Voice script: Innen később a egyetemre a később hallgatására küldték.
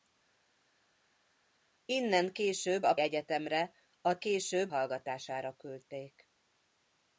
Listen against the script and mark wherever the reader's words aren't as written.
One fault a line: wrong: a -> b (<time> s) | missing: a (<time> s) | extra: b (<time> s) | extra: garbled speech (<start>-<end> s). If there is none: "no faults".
no faults